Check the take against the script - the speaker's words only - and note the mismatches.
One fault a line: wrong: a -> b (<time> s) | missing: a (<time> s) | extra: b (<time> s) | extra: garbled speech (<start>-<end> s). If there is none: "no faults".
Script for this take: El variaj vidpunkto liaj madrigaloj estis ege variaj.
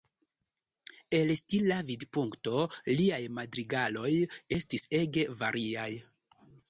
wrong: variaj -> stila (1.4 s)